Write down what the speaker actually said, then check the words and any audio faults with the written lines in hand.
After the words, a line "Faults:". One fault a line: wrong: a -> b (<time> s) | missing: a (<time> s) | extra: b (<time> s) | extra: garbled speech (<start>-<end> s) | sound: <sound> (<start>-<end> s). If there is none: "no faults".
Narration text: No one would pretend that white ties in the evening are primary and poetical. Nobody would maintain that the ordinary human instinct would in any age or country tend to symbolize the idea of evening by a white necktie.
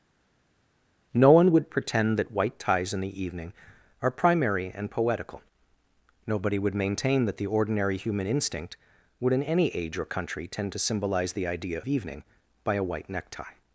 No one would pretend that white ties in the evening are primary and poetical. Nobody would maintain that the ordinary human instinct would in any age or country tend to symbolize the idea evening by a white necktie.
Faults:
missing: of (11.8 s)